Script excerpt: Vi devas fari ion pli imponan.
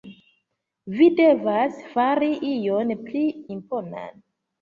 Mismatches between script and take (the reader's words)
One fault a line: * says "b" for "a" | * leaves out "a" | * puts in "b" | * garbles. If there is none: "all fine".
all fine